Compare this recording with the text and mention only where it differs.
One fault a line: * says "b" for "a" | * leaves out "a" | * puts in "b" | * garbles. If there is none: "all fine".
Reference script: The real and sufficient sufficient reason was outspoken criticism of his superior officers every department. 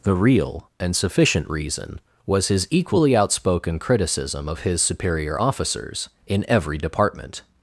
* leaves out "sufficient"
* puts in "his equally"
* puts in "in"